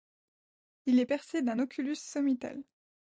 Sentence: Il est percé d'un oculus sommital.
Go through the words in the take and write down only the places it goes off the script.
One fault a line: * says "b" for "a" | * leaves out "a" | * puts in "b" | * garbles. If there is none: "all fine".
all fine